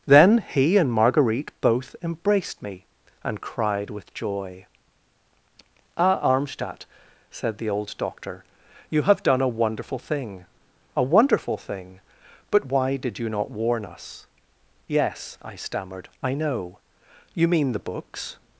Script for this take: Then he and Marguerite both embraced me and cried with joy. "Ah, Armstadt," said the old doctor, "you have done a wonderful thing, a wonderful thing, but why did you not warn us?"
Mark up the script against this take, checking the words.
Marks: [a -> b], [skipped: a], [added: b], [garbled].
Then he and Marguerite both embraced me and cried with joy. "Ah, Armstadt," said the old doctor, "you have done a wonderful thing, a wonderful thing, but why did you not warn us?" [added: Yes I stammered I know You mean the books]